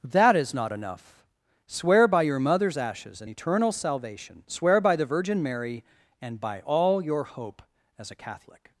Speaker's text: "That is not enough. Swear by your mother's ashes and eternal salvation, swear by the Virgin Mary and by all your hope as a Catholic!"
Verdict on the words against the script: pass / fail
pass